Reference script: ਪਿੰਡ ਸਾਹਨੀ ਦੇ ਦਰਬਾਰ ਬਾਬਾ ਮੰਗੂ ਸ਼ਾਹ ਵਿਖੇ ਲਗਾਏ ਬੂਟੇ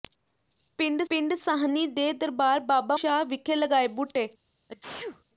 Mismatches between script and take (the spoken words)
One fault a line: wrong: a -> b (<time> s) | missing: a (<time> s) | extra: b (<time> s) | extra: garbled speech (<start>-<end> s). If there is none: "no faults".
extra: ਪਿੰਡ (1.1 s)
missing: ਮੰਗੂ (3.0 s)